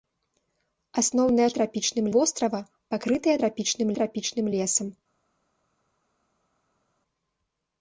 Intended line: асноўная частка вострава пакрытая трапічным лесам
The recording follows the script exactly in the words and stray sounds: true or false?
false